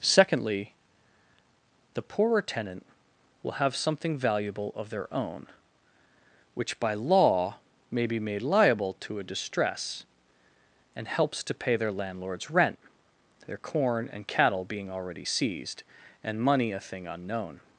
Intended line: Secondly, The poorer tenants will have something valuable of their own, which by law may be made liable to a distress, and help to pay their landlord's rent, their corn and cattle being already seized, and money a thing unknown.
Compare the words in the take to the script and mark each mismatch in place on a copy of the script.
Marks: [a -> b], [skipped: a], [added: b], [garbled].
Secondly, The poorer [tenants -> tenant] will have something valuable of their own, which by law may be made liable to a distress, and [help -> helps] to pay their landlord's rent, their corn and cattle being already seized, and money a thing unknown.